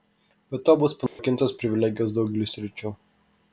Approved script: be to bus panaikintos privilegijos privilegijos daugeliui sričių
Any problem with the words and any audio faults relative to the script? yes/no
yes